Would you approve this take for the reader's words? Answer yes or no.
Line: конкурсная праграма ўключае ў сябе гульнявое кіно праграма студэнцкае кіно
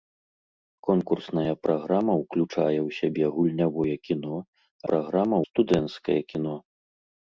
yes